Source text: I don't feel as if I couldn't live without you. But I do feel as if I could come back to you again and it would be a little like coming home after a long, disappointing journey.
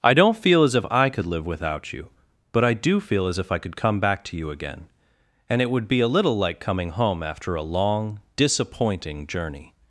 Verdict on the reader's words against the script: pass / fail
fail